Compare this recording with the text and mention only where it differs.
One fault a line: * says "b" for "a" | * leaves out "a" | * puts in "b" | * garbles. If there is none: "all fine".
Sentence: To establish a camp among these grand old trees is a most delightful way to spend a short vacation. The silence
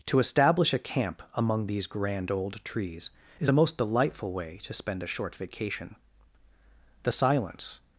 all fine